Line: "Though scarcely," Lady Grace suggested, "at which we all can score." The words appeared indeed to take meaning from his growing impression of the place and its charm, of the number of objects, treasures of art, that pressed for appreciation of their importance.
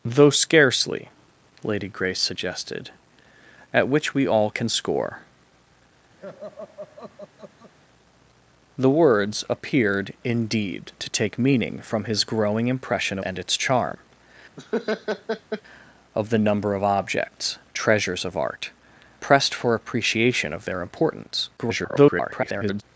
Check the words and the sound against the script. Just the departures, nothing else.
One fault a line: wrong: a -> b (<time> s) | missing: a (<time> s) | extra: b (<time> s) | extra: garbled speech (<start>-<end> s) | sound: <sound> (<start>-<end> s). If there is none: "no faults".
sound: laugh (6.2-7.7 s)
missing: of the place (13.2 s)
sound: laugh (14.6-15.6 s)
missing: that (18.7 s)
extra: garbled speech (21.6-22.8 s)